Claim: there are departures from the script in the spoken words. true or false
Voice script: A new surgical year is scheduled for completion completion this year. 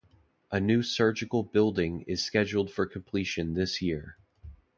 true